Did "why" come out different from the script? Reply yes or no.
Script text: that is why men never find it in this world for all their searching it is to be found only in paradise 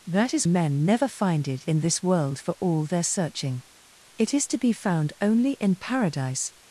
yes